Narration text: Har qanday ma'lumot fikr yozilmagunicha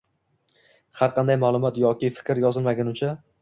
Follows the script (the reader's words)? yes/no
no